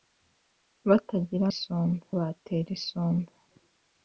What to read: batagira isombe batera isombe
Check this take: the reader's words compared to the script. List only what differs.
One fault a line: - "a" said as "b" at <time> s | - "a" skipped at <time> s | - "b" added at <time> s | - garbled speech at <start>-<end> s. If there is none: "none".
none